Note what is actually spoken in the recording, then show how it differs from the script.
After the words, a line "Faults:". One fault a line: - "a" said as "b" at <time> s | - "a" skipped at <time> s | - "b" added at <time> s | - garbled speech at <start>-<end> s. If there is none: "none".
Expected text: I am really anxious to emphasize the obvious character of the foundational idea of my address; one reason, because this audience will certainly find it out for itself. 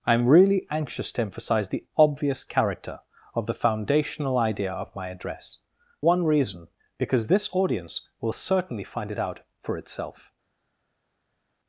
I am really anxious to emphasize the obvious character of the foundational idea of my address; one reason, because this audience will certainly find it out for itself.
Faults:
none